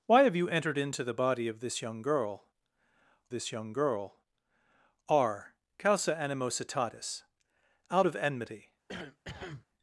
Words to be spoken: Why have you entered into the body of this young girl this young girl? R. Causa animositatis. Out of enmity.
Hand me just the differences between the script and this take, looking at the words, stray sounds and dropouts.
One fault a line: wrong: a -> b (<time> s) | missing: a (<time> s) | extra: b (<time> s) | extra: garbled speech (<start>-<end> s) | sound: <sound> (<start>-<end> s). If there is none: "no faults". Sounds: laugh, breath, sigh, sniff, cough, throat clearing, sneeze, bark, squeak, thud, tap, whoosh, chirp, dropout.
sound: cough (8.9-9.7 s)